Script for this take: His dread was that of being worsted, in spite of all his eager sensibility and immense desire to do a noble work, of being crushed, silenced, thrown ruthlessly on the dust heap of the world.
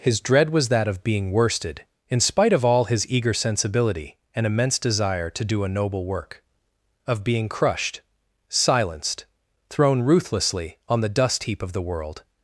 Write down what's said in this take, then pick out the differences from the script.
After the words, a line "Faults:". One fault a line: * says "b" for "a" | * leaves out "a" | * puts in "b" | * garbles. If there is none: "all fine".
His dread was that of being worsted, in spite of all his eager sensibility and immense desire to do a noble work, of being crushed, silenced, thrown ruthlessly on the dust heap of the world.
Faults:
all fine